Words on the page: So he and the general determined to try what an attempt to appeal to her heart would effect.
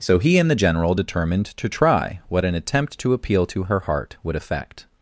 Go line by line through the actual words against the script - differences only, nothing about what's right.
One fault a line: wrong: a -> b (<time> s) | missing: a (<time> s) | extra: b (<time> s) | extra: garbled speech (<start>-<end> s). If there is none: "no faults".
no faults